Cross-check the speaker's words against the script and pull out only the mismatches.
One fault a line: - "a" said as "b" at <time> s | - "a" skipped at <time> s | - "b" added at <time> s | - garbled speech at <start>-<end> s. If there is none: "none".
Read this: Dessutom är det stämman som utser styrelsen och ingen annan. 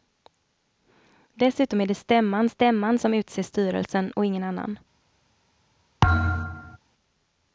- "stämman" added at 2.5 s